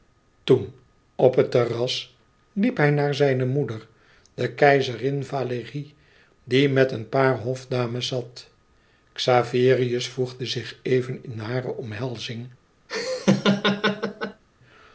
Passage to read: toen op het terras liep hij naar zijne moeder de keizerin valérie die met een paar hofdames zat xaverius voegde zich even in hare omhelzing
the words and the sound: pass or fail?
fail